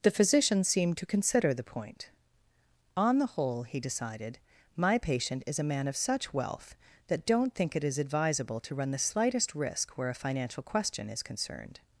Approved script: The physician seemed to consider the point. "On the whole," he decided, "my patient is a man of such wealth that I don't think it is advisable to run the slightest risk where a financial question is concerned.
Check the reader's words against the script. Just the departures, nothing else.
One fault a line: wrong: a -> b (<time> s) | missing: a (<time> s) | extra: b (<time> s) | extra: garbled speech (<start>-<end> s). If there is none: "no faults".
missing: I (7.3 s)